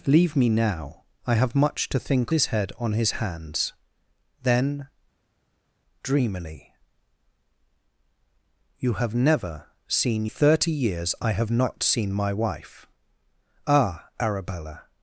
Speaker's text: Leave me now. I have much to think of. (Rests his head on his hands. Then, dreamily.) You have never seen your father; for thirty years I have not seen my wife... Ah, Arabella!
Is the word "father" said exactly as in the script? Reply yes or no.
no